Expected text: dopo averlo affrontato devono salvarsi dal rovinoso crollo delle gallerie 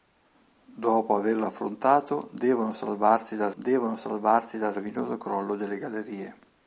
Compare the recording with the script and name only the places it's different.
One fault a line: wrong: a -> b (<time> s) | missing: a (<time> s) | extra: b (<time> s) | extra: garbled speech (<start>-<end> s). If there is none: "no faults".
extra: devono salvarsi dal (3.6 s)